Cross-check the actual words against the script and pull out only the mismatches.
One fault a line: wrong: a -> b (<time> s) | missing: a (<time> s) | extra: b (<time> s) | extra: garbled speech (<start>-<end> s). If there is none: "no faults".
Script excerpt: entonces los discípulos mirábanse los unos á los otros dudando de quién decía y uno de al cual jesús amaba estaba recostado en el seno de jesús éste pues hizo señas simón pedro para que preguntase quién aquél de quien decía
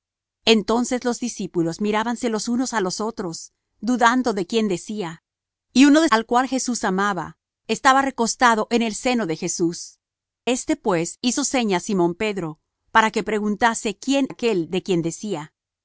no faults